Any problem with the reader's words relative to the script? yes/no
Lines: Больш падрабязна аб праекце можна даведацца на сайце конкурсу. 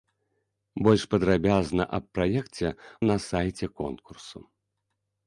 yes